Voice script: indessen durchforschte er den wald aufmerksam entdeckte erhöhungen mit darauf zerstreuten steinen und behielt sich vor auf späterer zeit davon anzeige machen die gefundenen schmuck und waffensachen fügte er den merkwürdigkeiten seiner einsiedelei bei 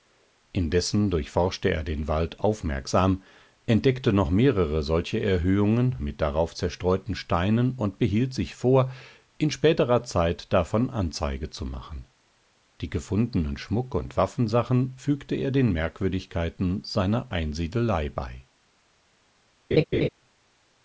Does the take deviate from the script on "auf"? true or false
true